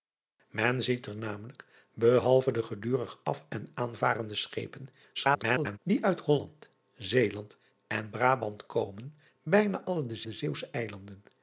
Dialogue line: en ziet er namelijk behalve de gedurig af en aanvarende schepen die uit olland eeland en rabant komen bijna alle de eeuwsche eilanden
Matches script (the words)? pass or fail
fail